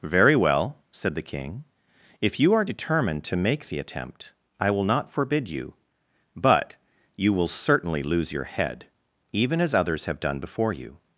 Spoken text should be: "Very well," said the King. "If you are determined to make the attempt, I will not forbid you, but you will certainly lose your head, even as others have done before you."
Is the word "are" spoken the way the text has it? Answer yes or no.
yes